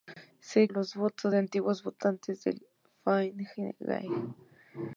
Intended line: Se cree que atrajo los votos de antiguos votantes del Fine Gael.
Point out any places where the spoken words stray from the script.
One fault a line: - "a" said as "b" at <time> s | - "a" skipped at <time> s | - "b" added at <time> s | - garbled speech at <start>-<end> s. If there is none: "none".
- "cree que atrajo" skipped at 0.7 s